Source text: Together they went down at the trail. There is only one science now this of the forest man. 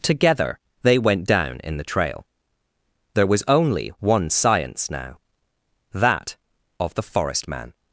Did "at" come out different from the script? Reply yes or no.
yes